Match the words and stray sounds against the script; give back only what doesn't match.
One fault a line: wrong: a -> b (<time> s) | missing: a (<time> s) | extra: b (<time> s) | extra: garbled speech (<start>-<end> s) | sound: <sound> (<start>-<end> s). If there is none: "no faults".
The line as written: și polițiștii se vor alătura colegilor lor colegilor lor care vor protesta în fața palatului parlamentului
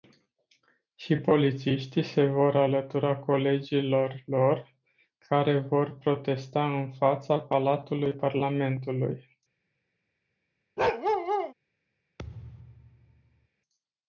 missing: colegilor lor (4.8 s)
sound: bark (10.8-11.5 s)
sound: thud (12.2-13.5 s)